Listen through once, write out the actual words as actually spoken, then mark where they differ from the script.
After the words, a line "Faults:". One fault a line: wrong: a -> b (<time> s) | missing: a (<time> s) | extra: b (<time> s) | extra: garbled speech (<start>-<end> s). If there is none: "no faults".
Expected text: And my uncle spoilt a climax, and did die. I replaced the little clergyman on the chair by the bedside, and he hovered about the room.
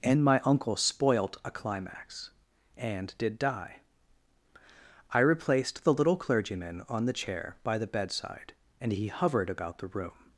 And my uncle spoilt a climax, and did die. I replaced the little clergyman on the chair by the bedside, and he hovered about the room.
Faults:
no faults